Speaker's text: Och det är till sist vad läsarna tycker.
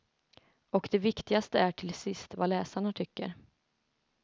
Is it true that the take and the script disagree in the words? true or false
true